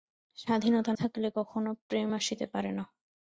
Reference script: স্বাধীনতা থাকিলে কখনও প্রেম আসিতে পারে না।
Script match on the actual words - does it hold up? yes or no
yes